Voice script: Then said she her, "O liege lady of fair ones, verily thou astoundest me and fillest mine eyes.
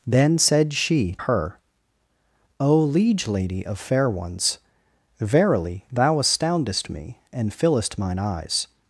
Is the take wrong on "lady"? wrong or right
right